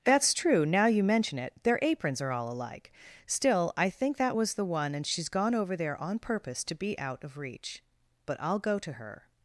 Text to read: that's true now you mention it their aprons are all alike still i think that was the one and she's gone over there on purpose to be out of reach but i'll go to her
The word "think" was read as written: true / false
true